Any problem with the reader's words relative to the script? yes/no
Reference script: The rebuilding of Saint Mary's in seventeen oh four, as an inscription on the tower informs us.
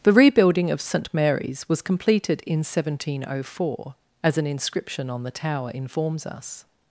yes